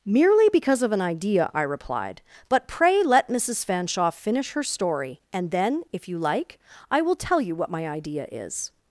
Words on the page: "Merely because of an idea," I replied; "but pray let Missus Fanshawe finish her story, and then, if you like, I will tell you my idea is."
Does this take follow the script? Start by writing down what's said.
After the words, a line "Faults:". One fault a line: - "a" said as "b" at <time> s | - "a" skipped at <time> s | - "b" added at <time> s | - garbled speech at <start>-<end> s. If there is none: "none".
"Merely because of an idea," I replied; "but pray let Missus Fanshawe finish her story, and then, if you like, I will tell you what my idea is."
Faults:
- "what" added at 7.5 s